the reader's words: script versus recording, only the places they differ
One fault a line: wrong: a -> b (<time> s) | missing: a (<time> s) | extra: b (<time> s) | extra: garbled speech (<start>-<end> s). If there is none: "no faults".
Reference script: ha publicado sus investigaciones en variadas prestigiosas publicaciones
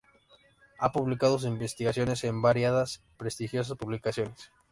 no faults